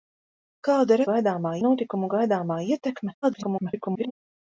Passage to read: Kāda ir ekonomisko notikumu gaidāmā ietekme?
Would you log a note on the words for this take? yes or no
yes